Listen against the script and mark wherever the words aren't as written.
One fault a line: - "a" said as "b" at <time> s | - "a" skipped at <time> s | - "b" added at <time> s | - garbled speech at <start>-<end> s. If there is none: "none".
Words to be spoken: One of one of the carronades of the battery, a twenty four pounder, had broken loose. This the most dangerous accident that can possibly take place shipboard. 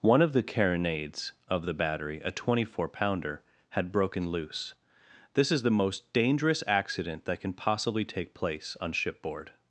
- "one of" skipped at 0.3 s
- "is" added at 5.5 s
- "on" added at 8.8 s